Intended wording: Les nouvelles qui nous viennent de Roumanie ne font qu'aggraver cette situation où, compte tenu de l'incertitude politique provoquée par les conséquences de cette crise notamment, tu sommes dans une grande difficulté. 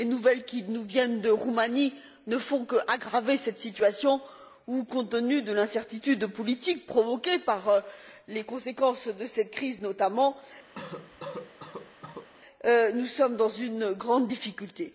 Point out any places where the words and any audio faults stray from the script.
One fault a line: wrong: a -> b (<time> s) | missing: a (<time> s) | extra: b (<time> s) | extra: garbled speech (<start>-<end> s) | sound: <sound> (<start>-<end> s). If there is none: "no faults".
sound: cough (10.7-12.3 s)
wrong: tu -> nous (12.7 s)